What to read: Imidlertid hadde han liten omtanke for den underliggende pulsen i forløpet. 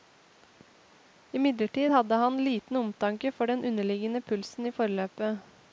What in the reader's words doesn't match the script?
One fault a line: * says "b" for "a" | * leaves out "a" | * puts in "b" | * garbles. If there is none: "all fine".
all fine